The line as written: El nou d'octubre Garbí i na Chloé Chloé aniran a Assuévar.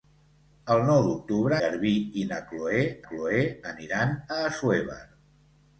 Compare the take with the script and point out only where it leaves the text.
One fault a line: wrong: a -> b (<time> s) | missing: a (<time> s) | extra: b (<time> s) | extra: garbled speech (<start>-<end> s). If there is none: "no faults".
no faults